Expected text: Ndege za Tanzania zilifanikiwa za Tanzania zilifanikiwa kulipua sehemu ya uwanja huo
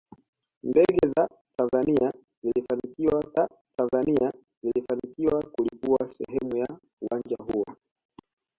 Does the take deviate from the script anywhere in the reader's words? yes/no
no